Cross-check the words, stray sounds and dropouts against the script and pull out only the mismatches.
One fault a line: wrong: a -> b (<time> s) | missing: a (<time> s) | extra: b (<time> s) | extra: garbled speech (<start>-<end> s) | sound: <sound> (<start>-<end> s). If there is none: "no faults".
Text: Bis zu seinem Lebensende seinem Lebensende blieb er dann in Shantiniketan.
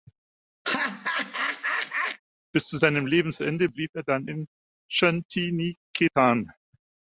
sound: laugh (0.6-2.2 s)
missing: seinem Lebensende (3.7 s)